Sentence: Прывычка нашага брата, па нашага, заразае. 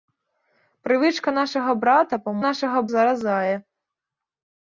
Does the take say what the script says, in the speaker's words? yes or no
yes